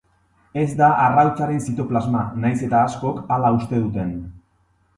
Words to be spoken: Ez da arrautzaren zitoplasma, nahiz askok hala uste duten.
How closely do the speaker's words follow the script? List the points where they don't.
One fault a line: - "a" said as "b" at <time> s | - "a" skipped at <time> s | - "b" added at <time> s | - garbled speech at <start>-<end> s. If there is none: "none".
- "eta" added at 2.7 s